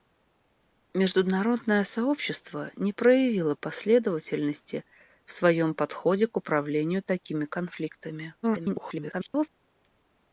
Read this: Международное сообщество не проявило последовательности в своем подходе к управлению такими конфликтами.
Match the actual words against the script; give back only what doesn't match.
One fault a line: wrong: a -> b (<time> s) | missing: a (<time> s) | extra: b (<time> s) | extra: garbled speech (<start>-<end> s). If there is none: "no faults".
extra: garbled speech (8.4-9.5 s)